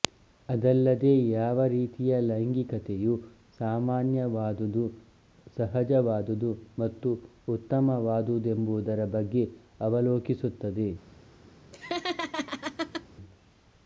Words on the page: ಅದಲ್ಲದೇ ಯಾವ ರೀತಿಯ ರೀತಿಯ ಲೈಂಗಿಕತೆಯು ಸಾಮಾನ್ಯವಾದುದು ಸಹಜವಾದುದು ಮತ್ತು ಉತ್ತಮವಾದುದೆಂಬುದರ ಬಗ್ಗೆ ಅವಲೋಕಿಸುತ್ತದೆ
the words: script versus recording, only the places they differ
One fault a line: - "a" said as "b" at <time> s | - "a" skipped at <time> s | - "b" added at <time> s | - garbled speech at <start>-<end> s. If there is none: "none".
- "ರೀತಿಯ" skipped at 2.1 s